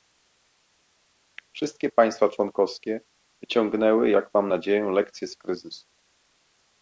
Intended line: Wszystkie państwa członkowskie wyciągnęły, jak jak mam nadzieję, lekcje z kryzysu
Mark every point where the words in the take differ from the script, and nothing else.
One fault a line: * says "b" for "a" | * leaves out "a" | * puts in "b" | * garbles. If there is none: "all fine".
* leaves out "jak"